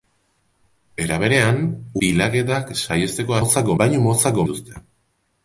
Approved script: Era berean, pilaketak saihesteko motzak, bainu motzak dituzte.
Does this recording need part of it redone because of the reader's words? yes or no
no